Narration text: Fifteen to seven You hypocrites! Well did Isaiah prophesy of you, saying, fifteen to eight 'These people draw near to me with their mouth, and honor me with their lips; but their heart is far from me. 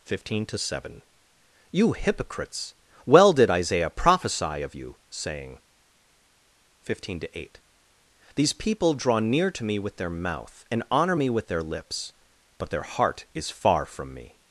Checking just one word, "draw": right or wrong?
right